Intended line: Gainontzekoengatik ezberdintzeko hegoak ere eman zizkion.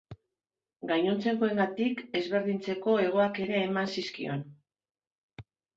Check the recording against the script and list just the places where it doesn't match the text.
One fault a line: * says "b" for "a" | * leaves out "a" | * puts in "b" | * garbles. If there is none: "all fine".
all fine